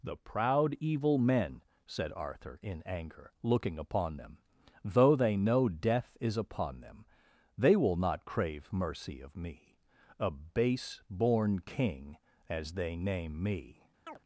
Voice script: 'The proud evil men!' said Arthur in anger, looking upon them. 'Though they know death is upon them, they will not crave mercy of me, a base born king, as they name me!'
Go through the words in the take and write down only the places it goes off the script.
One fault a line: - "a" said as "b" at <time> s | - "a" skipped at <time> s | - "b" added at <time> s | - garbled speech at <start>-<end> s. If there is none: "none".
none